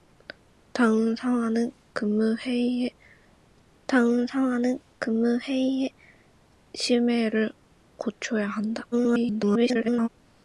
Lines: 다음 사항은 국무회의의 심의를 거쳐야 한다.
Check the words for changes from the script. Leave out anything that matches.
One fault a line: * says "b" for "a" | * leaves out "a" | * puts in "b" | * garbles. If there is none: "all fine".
* puts in "다음 사항은 국무회의의"
* garbles